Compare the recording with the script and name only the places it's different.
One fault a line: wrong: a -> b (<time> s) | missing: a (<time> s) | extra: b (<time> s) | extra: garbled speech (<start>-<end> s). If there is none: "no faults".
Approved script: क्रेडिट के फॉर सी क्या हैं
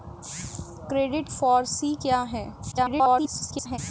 missing: के (1.3 s)
extra: garbled speech (2.7-3.8 s)